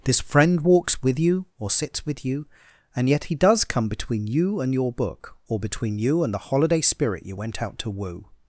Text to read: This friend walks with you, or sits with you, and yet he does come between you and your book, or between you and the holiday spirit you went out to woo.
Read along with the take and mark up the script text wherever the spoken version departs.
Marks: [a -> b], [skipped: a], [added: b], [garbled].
This friend walks with you, or sits with you, and yet he does come between you and your book, or between you and the holiday spirit you went out to woo.